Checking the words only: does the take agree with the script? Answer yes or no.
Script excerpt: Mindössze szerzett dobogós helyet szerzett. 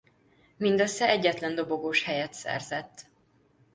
no